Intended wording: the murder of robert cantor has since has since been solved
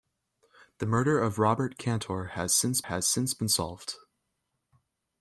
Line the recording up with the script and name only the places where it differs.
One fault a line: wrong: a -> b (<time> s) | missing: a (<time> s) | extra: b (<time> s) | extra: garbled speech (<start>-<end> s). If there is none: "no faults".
no faults